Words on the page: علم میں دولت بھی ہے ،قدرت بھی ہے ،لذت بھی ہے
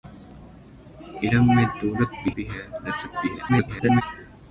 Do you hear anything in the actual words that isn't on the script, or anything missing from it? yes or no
yes